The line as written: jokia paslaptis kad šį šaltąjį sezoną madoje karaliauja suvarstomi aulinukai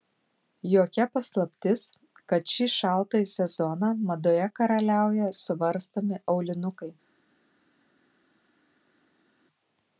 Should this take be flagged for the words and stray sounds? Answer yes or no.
no